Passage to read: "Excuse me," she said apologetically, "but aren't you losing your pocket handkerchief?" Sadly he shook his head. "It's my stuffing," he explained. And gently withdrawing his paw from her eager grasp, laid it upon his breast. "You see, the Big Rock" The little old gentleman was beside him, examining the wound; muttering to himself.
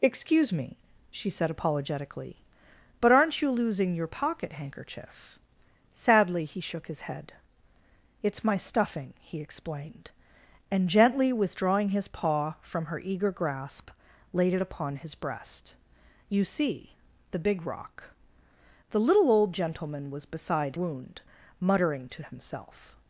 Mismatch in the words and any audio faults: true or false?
true